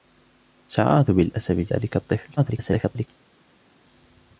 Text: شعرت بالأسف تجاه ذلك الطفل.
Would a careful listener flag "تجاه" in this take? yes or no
yes